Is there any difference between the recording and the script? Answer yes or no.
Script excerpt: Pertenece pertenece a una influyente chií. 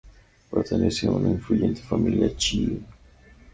yes